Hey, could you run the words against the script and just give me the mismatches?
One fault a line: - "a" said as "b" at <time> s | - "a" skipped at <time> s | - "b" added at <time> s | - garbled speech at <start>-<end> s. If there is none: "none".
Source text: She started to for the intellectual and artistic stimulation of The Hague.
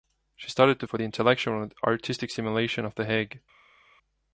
none